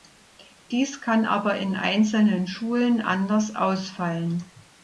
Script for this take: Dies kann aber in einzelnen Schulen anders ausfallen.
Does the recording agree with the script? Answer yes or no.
yes